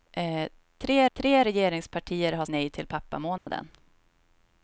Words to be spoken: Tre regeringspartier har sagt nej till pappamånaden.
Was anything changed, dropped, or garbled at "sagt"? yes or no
yes